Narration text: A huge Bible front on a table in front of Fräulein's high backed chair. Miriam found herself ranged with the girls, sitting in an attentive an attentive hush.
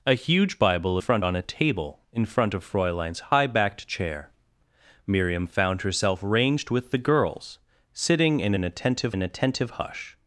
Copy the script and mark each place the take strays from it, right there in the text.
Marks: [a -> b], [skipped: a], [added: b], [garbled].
A huge Bible front on a table in front of Fräulein's high backed chair. Miriam found herself ranged with the girls, sitting in an attentive an attentive hush.